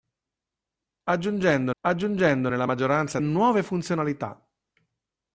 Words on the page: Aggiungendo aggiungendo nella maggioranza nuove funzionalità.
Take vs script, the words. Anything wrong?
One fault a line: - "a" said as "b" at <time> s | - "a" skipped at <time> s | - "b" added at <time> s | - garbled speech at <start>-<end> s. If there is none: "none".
none